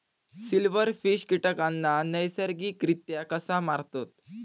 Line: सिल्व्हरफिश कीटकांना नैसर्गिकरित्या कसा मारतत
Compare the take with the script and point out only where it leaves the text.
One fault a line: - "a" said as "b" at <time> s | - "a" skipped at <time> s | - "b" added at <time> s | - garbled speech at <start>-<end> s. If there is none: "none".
none